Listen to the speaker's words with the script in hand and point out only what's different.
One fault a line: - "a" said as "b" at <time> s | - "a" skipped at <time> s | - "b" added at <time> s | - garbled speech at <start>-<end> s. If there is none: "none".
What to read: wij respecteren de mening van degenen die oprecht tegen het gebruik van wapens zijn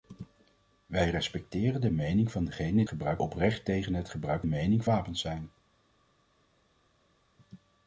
- "die" said as "gebruik" at 2.9 s
- "van" said as "mening" at 4.4 s